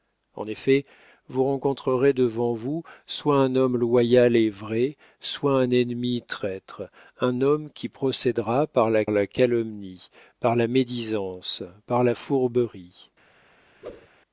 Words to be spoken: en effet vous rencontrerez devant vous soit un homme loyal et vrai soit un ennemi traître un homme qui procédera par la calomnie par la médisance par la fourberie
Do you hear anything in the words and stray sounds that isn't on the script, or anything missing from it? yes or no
yes